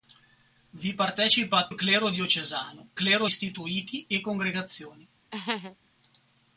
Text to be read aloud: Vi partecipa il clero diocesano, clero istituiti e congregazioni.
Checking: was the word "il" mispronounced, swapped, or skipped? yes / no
no